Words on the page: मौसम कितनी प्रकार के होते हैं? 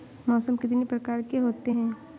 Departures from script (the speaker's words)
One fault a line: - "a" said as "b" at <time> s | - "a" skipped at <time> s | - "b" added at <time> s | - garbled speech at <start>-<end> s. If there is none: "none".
none